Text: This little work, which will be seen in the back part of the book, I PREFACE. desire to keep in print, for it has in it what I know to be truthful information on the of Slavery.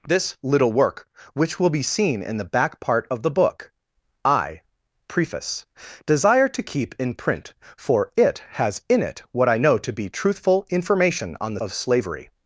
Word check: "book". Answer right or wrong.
right